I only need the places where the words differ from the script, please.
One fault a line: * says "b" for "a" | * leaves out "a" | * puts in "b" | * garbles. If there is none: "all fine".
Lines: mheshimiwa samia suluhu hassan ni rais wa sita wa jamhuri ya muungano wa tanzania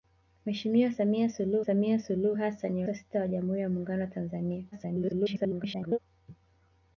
* puts in "samia suluhu"
* leaves out "rais"
* garbles